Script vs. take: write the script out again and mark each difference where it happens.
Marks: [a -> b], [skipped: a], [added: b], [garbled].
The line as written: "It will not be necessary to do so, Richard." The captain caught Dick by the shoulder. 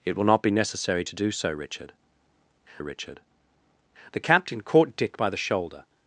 "It will not be necessary to do so, Richard." [added: Richard] The captain caught Dick by the shoulder.